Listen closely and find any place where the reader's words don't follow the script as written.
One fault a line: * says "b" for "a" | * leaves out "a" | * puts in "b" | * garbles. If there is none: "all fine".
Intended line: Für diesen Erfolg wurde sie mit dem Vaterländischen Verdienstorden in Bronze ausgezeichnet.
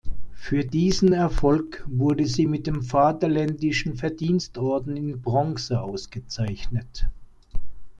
all fine